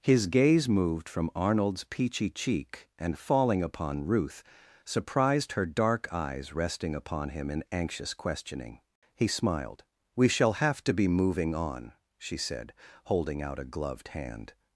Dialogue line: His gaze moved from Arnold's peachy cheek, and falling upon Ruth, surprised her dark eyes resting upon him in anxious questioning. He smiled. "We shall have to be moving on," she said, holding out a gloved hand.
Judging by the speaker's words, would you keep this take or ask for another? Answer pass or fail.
pass